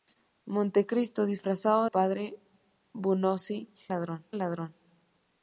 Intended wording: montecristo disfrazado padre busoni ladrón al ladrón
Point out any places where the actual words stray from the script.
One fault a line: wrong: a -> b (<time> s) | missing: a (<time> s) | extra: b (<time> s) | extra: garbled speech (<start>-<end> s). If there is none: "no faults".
no faults